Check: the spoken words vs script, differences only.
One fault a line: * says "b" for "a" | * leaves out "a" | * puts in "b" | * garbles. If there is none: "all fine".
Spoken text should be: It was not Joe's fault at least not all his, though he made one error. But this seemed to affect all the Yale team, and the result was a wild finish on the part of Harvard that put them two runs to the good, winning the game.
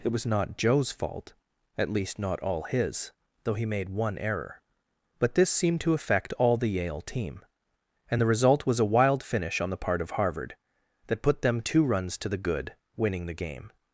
all fine